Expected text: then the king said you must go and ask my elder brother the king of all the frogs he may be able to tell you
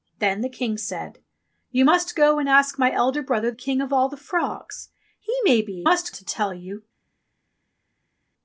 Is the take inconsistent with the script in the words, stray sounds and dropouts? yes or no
yes